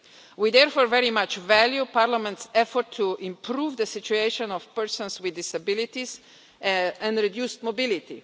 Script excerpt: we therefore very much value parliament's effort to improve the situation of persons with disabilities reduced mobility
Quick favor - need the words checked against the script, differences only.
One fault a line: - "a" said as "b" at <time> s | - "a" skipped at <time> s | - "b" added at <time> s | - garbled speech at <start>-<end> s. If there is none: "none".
- "and" added at 6.6 s